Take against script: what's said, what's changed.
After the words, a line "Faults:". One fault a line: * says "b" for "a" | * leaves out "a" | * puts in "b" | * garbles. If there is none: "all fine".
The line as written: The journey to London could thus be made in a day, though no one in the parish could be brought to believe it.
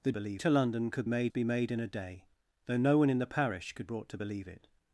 The believe to London could made be made in a day, though no one in the parish could brought to believe it.
Faults:
* says "believe" for "journey"
* says "made" for "thus"
* leaves out "be"